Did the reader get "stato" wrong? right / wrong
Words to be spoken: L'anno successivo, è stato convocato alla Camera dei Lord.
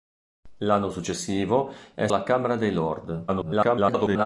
wrong